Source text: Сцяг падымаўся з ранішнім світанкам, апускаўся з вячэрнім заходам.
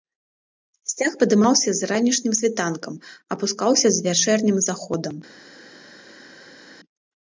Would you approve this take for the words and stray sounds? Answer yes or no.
yes